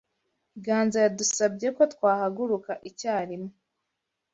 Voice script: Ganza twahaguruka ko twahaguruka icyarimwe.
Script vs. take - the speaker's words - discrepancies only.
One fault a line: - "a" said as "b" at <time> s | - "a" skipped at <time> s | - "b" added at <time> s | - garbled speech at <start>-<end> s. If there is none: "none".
- "twahaguruka" said as "yadusabye" at 1.1 s